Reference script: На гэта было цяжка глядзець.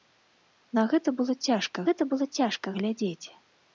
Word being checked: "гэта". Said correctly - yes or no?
yes